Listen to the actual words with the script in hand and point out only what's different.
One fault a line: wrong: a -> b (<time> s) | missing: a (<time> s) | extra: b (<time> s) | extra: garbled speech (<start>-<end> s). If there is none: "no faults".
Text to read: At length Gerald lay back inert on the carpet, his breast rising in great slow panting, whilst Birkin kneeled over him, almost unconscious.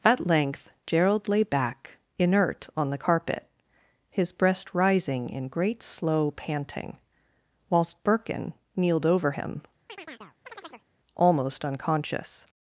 no faults